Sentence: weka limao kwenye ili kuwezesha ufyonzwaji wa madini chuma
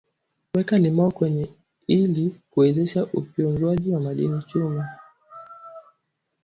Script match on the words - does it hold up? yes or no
yes